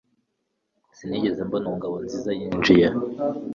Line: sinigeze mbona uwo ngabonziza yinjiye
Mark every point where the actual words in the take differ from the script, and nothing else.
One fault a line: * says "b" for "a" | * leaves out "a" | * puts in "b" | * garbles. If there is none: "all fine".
all fine